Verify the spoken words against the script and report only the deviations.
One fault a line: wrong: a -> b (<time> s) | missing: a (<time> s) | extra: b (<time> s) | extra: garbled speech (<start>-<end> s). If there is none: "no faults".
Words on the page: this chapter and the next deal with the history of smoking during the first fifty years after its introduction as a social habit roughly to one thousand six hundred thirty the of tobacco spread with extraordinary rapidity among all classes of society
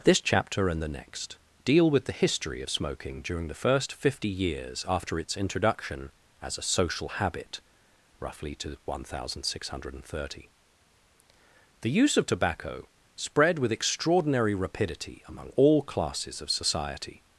extra: use (11.9 s)